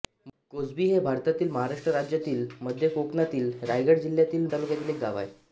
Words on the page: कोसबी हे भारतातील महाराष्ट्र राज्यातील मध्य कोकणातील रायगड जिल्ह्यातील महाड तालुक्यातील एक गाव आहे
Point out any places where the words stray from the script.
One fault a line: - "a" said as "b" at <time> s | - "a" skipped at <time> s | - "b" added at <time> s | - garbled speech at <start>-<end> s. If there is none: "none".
- "महाड" skipped at 4.5 s